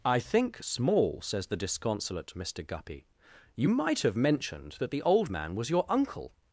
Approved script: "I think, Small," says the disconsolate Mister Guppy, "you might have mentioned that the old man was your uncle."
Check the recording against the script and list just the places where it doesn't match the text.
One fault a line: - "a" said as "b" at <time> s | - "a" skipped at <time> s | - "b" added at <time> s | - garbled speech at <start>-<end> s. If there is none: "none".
none